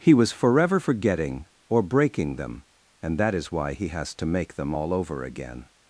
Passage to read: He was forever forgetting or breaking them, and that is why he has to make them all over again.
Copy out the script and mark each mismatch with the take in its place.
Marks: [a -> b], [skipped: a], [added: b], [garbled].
He was forever forgetting or breaking them, and that is why he has to make them all over again.